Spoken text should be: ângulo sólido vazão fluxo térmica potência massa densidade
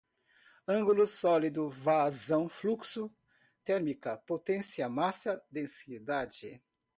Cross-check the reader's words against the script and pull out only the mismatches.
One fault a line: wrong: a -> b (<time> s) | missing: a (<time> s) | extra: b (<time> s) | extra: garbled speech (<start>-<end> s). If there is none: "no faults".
no faults